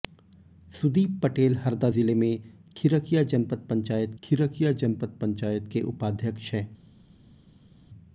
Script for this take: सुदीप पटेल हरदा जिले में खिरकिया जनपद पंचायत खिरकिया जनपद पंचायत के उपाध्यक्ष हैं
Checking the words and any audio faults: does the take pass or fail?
pass